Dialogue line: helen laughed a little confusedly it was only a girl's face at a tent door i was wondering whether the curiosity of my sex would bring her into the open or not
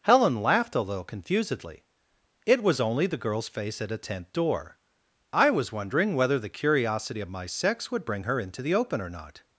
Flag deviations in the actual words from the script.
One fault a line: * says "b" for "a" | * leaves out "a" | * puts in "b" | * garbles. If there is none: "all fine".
* says "the" for "a"